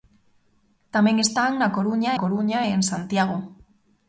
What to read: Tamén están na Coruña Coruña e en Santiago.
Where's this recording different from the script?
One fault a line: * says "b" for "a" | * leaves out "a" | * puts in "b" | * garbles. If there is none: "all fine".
all fine